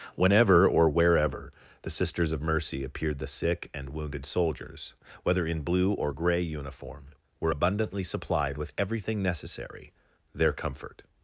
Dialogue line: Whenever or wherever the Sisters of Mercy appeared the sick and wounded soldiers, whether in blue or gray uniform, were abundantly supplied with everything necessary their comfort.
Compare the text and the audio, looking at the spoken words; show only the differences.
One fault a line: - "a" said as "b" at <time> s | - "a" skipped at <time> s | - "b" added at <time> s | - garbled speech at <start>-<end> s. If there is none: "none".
none